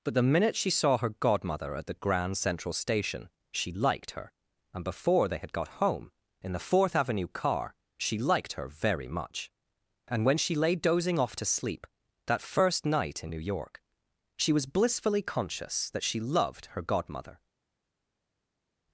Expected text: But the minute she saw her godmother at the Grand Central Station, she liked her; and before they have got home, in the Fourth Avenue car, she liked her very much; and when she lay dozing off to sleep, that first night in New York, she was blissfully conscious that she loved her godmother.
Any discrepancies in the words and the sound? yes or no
yes